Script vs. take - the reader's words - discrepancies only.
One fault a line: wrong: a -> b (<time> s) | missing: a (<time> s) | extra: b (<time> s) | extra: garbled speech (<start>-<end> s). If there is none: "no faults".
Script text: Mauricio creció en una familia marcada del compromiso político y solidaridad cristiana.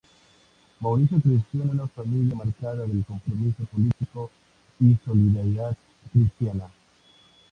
no faults